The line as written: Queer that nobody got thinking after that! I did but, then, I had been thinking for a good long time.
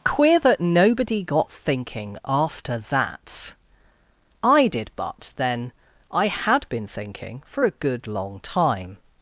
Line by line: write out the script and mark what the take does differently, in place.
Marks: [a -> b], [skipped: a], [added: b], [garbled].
Queer that nobody got thinking after that! I did but, then, I had been thinking for a good long time.